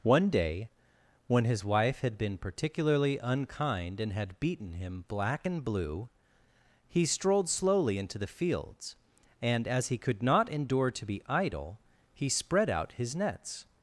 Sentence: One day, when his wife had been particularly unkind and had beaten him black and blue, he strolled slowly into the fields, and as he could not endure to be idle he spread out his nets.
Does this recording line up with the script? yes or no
yes